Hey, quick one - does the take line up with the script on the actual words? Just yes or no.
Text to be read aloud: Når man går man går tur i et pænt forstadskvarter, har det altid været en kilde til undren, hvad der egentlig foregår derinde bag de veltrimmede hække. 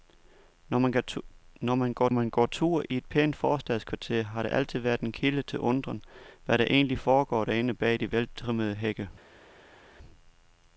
yes